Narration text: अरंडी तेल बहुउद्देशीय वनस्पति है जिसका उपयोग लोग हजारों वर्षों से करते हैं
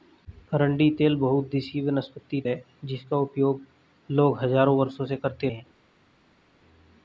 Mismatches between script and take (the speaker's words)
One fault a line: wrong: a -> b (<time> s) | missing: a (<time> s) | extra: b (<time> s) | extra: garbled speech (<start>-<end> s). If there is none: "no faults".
no faults